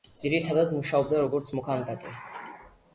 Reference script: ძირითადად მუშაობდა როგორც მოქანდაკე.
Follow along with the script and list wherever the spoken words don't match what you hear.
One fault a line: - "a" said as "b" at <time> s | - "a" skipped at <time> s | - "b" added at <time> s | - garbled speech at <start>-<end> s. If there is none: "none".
none